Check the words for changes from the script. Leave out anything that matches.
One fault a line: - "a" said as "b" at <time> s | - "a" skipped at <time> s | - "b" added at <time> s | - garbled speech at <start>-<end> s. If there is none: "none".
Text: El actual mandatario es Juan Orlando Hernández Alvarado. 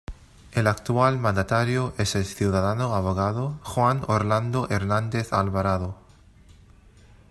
- "el ciudadano abogado" added at 2.1 s